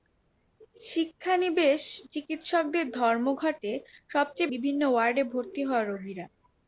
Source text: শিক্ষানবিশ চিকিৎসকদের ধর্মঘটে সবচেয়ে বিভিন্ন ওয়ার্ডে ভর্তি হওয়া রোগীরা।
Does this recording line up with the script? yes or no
yes